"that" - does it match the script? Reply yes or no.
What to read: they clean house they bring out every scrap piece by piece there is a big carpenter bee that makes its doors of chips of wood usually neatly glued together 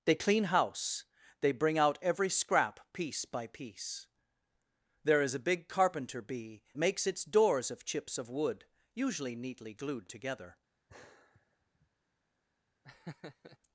no